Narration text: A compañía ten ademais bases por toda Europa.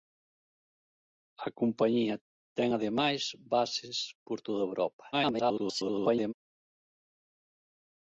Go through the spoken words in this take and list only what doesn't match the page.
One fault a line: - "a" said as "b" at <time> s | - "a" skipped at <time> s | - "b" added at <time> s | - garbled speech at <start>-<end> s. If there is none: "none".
- garbled speech at 5.1-6.3 s